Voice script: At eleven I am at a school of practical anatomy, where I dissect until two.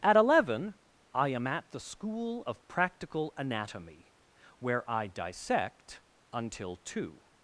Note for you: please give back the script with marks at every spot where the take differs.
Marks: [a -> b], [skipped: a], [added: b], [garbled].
At eleven I am at [a -> the] school of practical anatomy, where I dissect until two.